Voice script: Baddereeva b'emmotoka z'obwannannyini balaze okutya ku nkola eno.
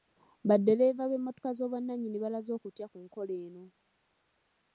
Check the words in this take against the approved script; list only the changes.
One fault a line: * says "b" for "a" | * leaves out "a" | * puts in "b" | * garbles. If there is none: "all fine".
all fine